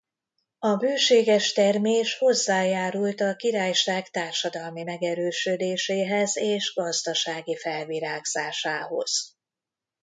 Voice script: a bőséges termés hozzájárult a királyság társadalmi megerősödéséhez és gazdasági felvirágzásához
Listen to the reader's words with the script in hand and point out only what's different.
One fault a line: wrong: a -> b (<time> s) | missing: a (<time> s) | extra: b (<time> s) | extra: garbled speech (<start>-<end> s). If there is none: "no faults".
no faults